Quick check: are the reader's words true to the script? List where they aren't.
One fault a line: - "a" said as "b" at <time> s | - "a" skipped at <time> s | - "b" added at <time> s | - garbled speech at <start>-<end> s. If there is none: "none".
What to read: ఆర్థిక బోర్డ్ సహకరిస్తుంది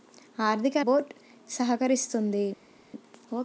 none